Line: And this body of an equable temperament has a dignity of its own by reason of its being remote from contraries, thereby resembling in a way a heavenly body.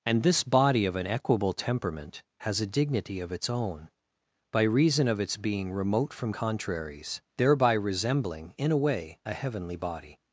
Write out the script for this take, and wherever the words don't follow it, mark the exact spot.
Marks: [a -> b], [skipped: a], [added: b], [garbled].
And this body of an equable temperament has a dignity of its own by reason of its being remote from contraries, thereby resembling in a way a heavenly body.